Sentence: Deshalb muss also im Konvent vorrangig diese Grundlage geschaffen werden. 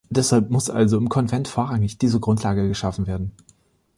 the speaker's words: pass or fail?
pass